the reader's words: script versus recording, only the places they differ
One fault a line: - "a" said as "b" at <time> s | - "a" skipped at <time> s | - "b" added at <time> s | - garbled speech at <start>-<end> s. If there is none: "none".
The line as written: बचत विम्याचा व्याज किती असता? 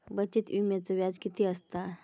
none